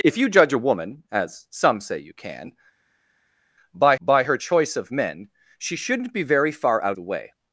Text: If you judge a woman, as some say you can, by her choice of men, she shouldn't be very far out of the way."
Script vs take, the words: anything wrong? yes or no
yes